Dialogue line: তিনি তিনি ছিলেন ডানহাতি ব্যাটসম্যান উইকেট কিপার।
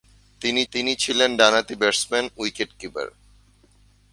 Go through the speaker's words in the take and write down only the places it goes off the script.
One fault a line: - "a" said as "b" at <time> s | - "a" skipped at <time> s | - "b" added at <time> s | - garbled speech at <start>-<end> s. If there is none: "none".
none